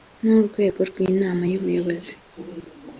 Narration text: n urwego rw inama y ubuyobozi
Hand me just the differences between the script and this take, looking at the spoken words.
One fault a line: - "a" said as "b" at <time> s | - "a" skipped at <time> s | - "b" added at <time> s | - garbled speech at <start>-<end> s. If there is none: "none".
none